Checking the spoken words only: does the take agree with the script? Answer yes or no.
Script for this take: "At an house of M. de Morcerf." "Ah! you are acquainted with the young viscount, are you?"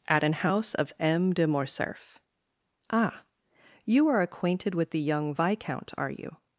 yes